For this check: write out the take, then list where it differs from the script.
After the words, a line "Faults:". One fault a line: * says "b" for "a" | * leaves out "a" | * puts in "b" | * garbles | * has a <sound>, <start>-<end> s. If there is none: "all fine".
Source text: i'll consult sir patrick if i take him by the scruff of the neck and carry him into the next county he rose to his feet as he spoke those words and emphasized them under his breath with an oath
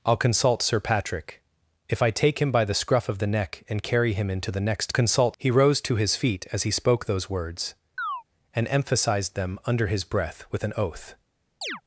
i'll consult sir patrick if i take him by the scruff of the neck and carry him into the next consult he rose to his feet as he spoke those words and emphasized them under his breath with an oath
Faults:
* says "consult" for "county"
* has a chirp, 8.0-8.2 s
* has a chirp, 11.6-11.8 s